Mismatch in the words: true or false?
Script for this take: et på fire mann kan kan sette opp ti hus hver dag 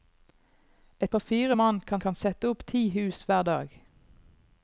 false